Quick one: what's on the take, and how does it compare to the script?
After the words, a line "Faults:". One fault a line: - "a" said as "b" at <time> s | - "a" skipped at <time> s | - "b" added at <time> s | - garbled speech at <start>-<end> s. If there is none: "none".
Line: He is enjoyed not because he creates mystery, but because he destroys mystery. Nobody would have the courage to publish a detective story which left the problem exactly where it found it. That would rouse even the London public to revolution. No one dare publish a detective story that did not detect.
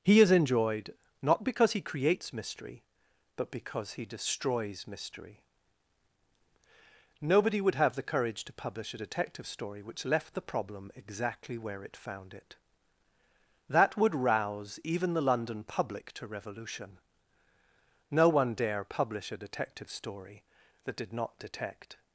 He is enjoyed not because he creates mystery, but because he destroys mystery. Nobody would have the courage to publish a detective story which left the problem exactly where it found it. That would rouse even the London public to revolution. No one dare publish a detective story that did not detect.
Faults:
none